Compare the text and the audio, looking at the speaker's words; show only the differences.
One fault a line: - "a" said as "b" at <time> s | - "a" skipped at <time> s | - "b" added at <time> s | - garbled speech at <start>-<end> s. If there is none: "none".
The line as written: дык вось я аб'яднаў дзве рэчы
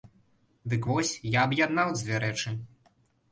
none